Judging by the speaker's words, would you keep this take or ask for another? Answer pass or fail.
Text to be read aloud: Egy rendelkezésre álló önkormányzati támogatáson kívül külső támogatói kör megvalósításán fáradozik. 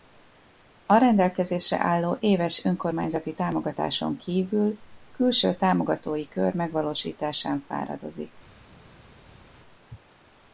fail